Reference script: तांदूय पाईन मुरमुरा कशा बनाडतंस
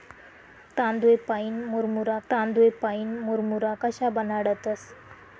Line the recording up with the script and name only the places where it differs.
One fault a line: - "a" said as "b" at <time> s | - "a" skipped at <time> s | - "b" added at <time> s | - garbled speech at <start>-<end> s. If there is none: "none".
- "तांदूय पाईन मुरमुरा" added at 2.3 s